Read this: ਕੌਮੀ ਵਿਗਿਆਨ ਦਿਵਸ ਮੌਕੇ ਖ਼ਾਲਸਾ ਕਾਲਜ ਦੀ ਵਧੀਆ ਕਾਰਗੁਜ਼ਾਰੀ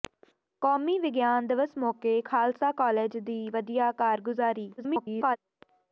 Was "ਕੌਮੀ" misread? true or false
false